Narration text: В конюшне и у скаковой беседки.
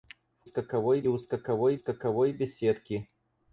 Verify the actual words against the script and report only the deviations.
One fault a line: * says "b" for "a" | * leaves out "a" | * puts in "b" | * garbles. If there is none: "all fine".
* says "скаковой" for "конюшне"
* puts in "скаковой"